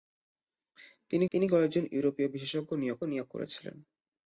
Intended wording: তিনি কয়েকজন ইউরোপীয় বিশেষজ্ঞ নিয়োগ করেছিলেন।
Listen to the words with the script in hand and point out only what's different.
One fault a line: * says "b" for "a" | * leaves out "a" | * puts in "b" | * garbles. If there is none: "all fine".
* puts in "তিনি"
* puts in "নিয়োগ"